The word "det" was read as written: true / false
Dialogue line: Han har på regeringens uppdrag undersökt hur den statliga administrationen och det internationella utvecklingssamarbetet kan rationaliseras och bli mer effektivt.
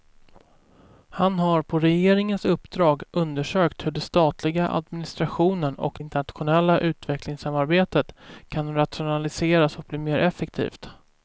false